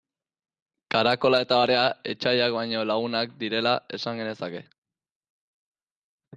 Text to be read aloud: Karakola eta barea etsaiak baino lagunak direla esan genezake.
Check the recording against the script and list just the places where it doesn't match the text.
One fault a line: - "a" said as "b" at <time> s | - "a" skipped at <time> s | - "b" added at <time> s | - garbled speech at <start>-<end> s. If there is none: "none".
none